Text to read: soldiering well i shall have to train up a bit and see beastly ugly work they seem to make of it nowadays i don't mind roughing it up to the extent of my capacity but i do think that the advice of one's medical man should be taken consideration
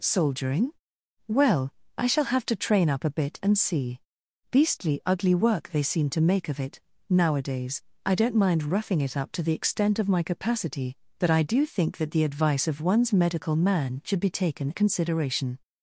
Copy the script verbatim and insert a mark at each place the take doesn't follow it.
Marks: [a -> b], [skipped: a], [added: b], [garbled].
soldiering well i shall have to train up a bit and see beastly ugly work they seem to make of it nowadays i don't mind roughing it up to the extent of my capacity but i do think that the advice of one's medical man should be taken consideration